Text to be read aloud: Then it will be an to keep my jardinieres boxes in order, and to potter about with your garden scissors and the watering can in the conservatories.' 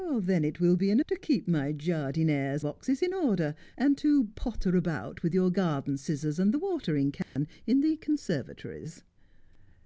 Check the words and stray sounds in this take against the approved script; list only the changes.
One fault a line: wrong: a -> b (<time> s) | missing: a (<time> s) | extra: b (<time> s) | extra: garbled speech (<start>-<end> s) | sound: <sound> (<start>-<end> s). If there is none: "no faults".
sound: dropout (7.2-7.4 s)